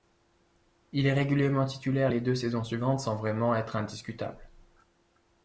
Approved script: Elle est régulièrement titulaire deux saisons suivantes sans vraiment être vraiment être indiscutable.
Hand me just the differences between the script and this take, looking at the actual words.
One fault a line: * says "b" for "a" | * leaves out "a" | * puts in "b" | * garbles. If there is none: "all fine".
* says "Il" for "Elle"
* puts in "les"
* leaves out "vraiment être"